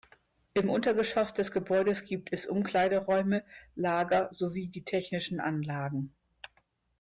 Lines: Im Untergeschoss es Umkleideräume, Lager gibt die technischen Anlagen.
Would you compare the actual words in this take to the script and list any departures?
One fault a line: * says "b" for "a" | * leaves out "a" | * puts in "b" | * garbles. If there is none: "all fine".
* puts in "des Gebäudes gibt"
* says "sowie" for "gibt"